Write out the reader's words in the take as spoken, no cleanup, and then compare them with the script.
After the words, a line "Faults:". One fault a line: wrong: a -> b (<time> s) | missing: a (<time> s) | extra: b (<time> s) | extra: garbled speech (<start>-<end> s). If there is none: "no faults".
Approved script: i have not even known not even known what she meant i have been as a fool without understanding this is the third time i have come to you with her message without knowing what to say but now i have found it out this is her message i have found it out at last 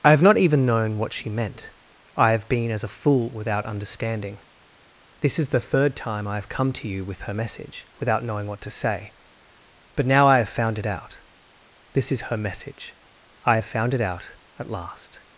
i have not even known what she meant i have been as a fool without understanding this is the third time i have come to you with her message without knowing what to say but now i have found it out this is her message i have found it out at last
Faults:
missing: not even known (1.0 s)